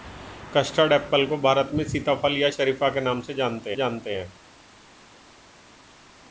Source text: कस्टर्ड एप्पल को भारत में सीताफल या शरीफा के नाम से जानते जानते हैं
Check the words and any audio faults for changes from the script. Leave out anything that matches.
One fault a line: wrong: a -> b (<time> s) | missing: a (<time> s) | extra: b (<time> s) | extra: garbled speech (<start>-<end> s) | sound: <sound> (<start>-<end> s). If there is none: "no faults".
no faults